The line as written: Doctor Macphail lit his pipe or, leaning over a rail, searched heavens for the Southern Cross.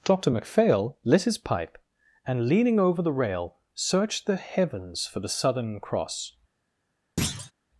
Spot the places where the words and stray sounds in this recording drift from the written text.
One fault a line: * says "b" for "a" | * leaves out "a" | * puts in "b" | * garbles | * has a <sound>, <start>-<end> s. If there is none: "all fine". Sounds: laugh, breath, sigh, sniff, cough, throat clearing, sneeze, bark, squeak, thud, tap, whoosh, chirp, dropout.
* says "and" for "or"
* says "the" for "a"
* puts in "the"
* has a thud, 7.2-7.5 s